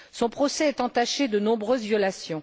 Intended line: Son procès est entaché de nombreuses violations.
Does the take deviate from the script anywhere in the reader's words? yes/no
no